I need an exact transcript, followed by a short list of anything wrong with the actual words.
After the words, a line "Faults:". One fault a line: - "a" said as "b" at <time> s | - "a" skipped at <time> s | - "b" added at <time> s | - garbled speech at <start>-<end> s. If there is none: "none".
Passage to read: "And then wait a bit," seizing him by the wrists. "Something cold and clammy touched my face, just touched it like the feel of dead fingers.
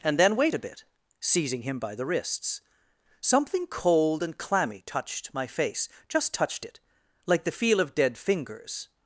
"And then wait a bit," seizing him by the wrists. "Something cold and clammy touched my face, just touched it like the feel of dead fingers.
Faults:
none